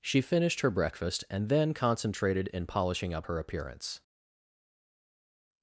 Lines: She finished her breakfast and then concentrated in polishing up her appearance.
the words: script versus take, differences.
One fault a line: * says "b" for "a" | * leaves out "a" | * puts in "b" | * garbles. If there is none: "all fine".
all fine